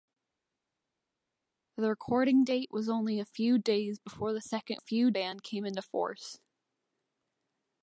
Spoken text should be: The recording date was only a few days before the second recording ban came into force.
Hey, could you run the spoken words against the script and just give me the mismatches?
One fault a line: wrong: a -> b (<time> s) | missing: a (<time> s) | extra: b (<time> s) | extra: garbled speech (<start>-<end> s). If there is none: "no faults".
wrong: recording -> few (4.8 s)